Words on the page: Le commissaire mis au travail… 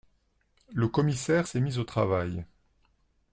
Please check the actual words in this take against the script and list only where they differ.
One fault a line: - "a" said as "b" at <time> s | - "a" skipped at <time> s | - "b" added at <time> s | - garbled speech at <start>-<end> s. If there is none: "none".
- "s'est" added at 1.4 s